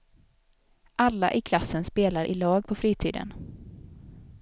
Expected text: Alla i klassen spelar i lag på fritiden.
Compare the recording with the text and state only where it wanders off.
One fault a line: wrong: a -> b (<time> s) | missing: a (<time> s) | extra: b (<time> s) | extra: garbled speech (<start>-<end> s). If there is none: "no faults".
no faults